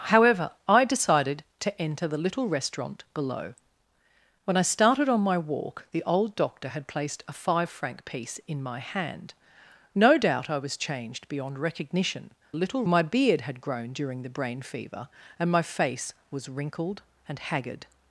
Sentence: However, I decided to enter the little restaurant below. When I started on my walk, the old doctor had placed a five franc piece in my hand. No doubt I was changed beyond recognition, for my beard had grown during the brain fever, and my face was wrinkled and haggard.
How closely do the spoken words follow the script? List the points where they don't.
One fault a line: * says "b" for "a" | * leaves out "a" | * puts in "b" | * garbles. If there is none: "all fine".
* says "little" for "for"